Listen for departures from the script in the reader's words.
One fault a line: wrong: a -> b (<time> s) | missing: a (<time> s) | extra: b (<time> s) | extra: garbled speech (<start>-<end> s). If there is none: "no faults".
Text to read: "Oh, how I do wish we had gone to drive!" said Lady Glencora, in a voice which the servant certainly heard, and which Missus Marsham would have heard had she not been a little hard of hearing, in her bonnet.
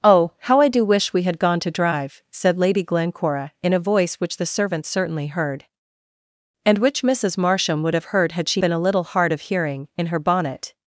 missing: not (8.6 s)